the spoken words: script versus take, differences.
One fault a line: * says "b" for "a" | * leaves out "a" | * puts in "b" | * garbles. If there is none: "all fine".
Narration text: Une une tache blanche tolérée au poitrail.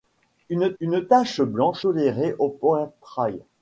all fine